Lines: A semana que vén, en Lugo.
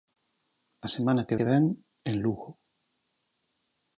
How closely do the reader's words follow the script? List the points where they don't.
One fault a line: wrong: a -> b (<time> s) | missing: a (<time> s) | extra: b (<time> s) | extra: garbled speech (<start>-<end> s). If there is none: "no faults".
extra: que (1.4 s)